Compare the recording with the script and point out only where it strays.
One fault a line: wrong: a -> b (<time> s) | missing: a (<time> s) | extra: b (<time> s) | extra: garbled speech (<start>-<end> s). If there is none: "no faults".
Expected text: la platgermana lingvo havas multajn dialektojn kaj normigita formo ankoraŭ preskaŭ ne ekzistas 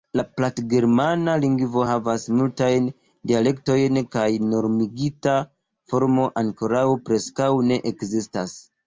no faults